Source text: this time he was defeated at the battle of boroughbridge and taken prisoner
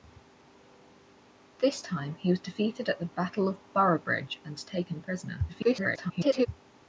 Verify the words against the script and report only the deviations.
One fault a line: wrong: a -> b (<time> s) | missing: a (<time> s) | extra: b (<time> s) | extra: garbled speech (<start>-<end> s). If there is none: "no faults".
extra: garbled speech (5.5-6.5 s)